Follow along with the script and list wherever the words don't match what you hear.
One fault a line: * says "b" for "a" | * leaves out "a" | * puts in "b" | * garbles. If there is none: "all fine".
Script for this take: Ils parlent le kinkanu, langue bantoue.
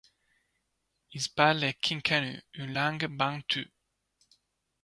* puts in "une"